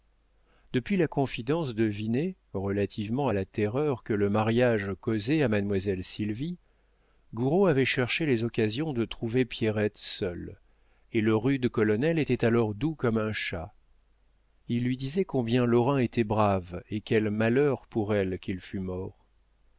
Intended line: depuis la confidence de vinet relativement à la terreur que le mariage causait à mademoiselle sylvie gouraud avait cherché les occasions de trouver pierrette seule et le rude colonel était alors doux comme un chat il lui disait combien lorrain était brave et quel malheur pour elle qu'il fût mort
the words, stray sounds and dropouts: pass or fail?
pass